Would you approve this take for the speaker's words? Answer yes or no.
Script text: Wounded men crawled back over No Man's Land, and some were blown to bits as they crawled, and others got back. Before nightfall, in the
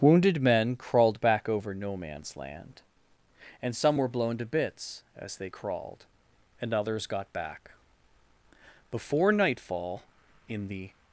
yes